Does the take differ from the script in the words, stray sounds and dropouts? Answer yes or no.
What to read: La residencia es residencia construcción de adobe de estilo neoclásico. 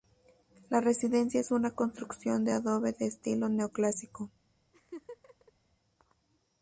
yes